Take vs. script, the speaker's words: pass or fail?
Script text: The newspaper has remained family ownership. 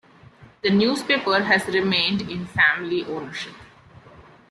fail